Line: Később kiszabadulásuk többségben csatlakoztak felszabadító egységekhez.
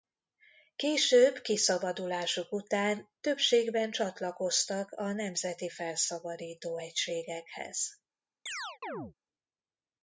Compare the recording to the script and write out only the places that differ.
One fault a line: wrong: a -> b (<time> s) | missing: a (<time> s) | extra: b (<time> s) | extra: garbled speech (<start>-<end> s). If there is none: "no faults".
extra: után (2.5 s)
extra: a nemzeti (4.9 s)